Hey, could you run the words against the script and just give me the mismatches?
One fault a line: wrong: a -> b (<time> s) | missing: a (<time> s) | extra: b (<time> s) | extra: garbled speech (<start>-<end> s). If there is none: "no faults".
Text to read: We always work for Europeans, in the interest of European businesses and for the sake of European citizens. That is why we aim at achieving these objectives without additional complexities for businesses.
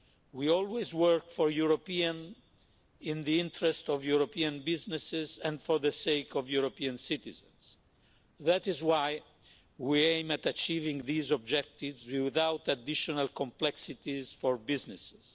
no faults